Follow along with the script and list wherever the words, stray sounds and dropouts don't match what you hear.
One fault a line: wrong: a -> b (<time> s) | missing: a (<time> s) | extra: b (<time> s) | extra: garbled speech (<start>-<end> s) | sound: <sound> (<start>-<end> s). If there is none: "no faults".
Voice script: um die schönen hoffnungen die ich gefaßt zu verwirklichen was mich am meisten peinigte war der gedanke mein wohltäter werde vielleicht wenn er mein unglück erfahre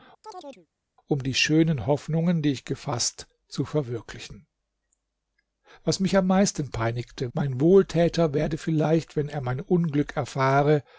sound: chirp (0.2-0.7 s)
missing: war der gedanke (7.3 s)